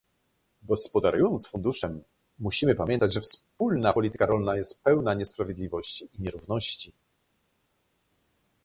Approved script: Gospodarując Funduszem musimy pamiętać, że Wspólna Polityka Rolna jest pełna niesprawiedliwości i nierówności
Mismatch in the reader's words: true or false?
false